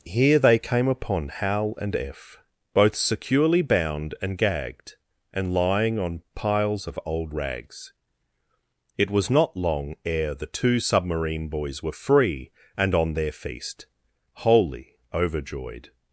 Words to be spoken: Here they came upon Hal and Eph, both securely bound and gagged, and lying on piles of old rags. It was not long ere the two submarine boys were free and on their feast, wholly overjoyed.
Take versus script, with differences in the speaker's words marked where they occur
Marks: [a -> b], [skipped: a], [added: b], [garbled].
Here they came upon Hal and Eph, both securely bound and gagged, and lying on piles of old rags. It was not long ere the two submarine boys were free and on their feast, wholly overjoyed.